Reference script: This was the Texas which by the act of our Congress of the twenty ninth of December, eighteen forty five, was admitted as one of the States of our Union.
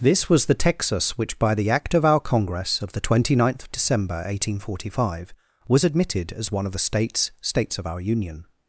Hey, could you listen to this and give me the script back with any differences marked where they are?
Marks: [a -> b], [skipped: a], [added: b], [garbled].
This was the Texas which by the act of our Congress of the twenty ninth of December, eighteen forty five, was admitted as one of the States [added: States] of our Union.